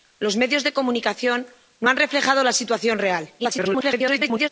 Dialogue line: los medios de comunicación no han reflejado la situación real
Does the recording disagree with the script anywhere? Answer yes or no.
yes